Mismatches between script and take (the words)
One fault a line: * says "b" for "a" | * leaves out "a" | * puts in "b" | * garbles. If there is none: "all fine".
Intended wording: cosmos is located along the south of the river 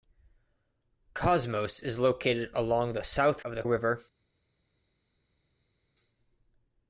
all fine